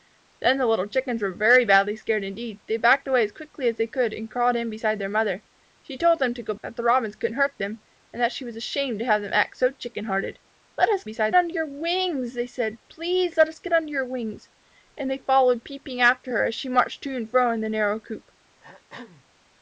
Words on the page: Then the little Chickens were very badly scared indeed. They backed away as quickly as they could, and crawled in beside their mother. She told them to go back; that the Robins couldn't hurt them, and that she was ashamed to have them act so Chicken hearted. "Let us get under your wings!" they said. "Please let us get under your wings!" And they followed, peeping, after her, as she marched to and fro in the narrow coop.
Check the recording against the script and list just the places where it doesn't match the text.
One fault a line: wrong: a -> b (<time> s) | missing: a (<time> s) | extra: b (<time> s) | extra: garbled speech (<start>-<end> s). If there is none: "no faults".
missing: back (6.5 s)
wrong: get -> beside (11.0 s)